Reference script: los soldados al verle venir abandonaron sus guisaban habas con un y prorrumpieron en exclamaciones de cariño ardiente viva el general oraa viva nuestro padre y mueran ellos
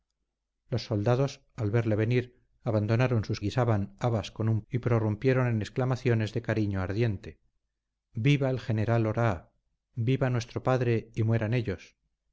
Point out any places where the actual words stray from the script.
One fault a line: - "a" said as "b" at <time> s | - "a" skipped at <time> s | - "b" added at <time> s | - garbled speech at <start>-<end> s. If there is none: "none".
none